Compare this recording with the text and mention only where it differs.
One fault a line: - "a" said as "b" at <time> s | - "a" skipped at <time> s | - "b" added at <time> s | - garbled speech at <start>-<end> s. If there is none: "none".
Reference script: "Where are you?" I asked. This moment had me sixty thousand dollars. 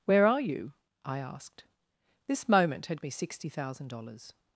none